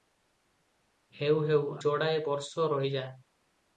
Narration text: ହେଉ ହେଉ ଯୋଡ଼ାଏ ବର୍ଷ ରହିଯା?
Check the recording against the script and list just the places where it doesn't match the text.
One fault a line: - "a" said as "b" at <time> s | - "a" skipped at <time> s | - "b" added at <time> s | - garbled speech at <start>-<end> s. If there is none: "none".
none